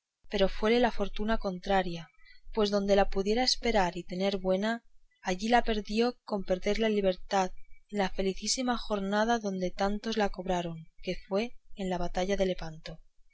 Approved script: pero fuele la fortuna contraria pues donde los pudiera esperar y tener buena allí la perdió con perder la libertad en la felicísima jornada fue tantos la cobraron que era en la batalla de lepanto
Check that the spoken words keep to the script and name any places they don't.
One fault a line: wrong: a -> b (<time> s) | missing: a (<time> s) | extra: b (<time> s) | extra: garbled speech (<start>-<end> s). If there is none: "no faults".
wrong: los -> la (3.0 s)
wrong: fue -> donde (9.4 s)
wrong: era -> fue (11.3 s)